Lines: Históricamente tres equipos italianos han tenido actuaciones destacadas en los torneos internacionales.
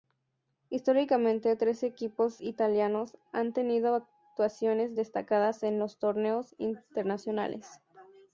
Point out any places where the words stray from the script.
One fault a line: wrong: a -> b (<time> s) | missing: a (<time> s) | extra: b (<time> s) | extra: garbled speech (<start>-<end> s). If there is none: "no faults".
no faults